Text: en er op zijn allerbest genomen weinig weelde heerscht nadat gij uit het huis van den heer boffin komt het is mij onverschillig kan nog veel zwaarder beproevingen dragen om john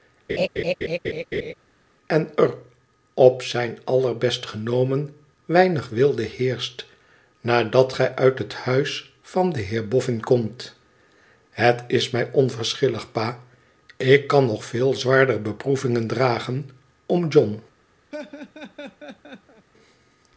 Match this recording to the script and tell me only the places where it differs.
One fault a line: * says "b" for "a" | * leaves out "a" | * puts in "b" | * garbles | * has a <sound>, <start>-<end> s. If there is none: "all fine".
* has a laugh, 0.3-1.5 s
* puts in "pa ik"
* has a laugh, 18.1-19.7 s